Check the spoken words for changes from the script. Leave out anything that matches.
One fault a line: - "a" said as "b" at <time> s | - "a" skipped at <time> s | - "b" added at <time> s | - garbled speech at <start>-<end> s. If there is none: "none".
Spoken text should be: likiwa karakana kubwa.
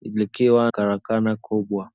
none